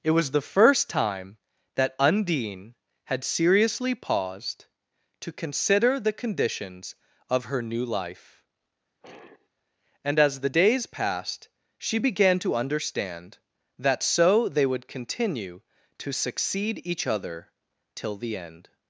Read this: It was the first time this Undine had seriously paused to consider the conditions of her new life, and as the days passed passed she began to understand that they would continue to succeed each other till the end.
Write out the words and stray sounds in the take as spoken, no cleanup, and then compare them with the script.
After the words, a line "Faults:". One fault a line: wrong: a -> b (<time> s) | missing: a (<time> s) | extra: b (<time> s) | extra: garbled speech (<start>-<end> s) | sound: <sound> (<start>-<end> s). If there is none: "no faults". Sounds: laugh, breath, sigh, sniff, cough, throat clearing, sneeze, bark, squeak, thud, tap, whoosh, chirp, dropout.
It was the first time that Undine had seriously paused to consider the conditions of her new life, and as the days passed she began to understand that so they would continue to succeed each other till the end.
Faults:
wrong: this -> that (1.8 s)
sound: sigh (9.0-9.5 s)
missing: passed (11.5 s)
extra: so (14.0 s)